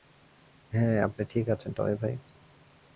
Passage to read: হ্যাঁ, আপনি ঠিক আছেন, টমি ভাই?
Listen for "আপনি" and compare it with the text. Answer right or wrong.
right